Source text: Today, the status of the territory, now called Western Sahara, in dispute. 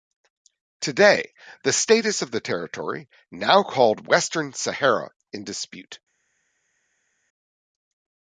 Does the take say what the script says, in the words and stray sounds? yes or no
yes